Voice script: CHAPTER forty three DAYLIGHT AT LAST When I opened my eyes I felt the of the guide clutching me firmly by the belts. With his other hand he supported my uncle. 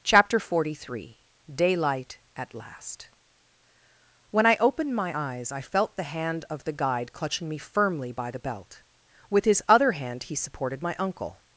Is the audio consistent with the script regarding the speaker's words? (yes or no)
no